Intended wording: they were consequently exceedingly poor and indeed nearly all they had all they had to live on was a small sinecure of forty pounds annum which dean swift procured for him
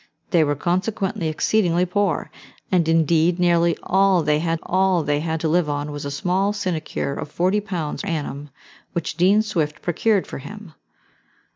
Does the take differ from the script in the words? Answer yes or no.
no